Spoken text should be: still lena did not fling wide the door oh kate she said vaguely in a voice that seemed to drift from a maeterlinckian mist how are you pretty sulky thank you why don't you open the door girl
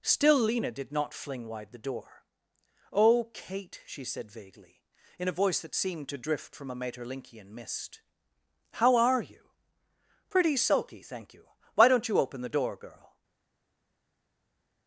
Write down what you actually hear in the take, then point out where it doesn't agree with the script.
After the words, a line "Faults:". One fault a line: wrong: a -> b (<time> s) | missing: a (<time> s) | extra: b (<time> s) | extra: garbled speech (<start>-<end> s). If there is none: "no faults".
still lena did not fling wide the door oh kate she said vaguely in a voice that seemed to drift from a maeterlinckian mist how are you pretty sulky thank you why don't you open the door girl
Faults:
no faults